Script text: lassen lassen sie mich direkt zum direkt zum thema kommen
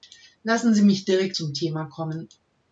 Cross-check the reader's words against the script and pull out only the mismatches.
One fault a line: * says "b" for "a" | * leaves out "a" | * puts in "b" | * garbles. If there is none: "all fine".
* leaves out "lassen"
* leaves out "direkt zum"